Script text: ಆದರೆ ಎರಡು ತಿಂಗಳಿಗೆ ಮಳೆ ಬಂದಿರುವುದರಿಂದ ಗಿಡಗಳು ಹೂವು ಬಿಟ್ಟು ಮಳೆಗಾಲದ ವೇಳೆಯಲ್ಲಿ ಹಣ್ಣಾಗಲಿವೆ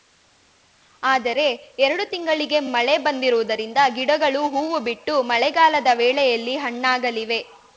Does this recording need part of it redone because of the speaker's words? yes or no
no